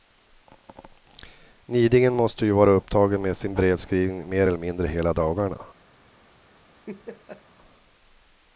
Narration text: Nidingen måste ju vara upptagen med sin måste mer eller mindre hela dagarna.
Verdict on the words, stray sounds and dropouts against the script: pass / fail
fail